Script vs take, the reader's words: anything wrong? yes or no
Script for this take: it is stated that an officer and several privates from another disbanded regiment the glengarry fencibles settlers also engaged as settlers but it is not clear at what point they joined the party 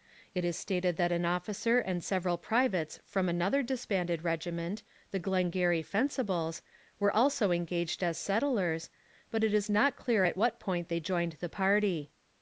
yes